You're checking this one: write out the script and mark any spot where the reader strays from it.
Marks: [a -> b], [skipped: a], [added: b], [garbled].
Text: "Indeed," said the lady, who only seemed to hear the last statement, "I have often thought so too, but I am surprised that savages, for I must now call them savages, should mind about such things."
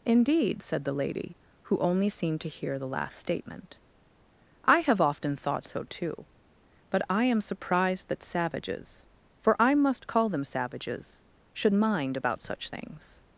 "Indeed," said the lady, who only seemed to hear the last statement, "I have often thought so too, but I am surprised that savages, for I must [skipped: now] call them savages, should mind about such things."